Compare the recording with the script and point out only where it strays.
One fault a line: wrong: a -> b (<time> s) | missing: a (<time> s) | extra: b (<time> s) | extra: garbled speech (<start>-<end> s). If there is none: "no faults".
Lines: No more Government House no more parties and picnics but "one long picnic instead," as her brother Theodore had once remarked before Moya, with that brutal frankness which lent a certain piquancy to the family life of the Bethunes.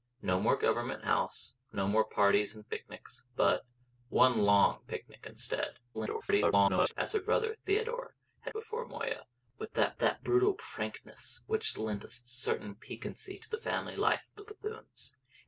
extra: garbled speech (5.9-6.9 s)
missing: once remarked (8.5 s)
extra: that (10.0 s)